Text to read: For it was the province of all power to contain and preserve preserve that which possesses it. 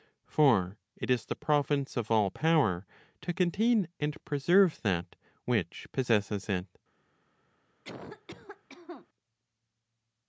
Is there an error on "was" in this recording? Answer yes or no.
yes